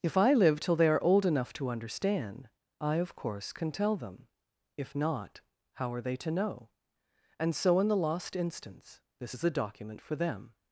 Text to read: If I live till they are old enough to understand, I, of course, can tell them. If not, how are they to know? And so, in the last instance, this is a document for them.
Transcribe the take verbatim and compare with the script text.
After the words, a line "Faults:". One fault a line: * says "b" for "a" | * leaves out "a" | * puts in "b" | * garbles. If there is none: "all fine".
If I live till they are old enough to understand, I, of course, can tell them. If not, how are they to know? And so, in the lost instance, this is a document for them.
Faults:
* says "lost" for "last"